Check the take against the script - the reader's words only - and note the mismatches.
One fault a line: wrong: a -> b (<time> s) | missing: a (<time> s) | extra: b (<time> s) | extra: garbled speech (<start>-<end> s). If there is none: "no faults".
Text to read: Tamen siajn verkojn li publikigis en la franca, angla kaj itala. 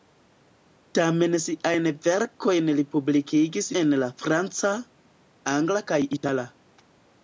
no faults